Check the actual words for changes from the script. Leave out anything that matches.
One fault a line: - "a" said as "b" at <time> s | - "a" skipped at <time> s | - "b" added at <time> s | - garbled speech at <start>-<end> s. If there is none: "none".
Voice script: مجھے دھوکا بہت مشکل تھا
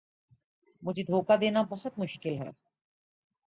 - "دینا" added at 1.4 s
- "تھا" said as "ہے" at 2.3 s